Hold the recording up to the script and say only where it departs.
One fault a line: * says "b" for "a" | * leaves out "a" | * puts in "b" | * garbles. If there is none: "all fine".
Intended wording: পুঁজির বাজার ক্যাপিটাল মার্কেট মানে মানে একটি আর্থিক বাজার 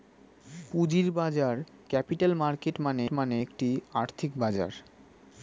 all fine